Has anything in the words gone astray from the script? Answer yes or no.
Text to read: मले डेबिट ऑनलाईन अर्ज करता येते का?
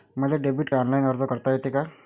no